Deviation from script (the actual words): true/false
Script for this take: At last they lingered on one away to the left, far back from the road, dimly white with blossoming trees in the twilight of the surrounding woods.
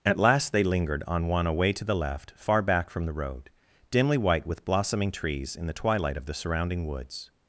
false